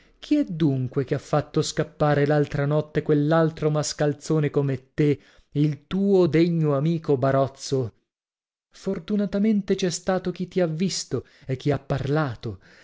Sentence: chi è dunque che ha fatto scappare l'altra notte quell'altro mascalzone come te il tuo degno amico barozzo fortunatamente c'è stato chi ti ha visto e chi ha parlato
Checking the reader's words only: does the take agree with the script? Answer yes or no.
yes